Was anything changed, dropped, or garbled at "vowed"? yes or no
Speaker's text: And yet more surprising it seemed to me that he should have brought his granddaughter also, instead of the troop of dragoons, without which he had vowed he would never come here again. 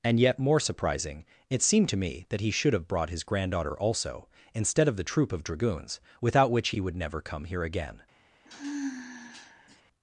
yes